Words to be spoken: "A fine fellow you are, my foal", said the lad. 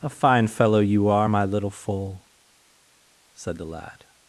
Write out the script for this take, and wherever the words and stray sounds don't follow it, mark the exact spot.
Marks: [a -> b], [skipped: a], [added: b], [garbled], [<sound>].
"A fine fellow you are, my [added: little] foal", said the lad.